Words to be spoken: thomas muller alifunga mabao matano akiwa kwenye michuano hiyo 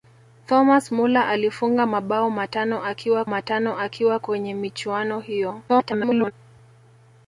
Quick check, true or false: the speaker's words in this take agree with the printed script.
false